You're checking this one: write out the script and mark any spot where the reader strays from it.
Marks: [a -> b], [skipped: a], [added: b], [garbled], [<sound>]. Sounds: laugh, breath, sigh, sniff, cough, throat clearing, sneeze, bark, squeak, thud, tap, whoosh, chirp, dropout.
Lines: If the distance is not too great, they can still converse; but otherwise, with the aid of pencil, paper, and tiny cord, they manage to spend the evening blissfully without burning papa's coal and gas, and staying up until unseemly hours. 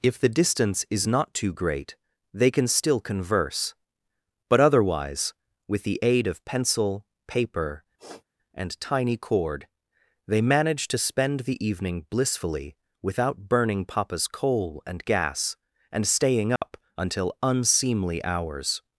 If the distance is not too great, they can still converse; but otherwise, with the aid of pencil, paper, [sniff] and tiny cord, they manage to spend the evening blissfully without burning papa's coal and gas, and staying up [dropout] until unseemly hours.